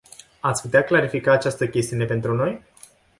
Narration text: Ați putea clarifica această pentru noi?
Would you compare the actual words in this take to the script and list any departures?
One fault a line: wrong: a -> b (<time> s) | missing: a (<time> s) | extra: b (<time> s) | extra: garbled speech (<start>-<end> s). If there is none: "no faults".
extra: chestiune (1.7 s)